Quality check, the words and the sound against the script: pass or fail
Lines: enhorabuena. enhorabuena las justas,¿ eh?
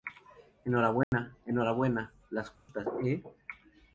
fail